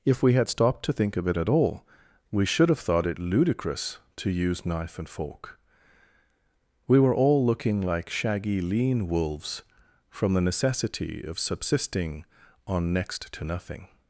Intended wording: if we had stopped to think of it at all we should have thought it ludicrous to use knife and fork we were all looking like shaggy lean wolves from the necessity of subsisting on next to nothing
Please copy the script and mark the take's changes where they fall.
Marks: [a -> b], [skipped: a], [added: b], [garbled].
if we had stopped to think of it at all we should have thought it ludicrous to use knife and fork we were all looking like shaggy lean wolves from the necessity of subsisting on next to nothing